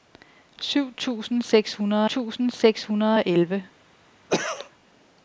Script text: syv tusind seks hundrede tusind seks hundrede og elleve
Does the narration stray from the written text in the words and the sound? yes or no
yes